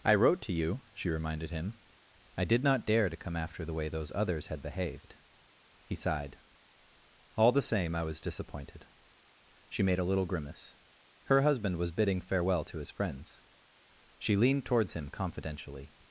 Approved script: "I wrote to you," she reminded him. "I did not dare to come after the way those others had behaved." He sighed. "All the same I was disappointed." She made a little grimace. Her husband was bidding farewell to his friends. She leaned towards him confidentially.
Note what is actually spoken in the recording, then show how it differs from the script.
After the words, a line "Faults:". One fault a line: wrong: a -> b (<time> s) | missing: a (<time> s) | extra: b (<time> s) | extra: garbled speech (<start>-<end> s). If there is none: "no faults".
"I wrote to you," she reminded him. "I did not dare to come after the way those others had behaved." He sighed. "All the same I was disappointed." She made a little grimace. Her husband was bidding farewell to his friends. She leaned towards him confidentially.
Faults:
no faults